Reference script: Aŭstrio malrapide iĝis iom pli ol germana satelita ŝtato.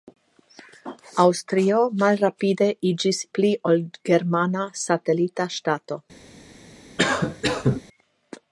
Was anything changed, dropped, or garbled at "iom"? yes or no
yes